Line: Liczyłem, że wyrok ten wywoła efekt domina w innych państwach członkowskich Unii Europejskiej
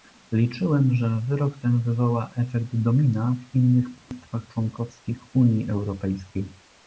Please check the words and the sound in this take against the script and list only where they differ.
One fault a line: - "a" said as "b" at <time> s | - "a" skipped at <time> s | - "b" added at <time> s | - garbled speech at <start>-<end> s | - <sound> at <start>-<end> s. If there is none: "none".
- dropout at 4.0-4.1 s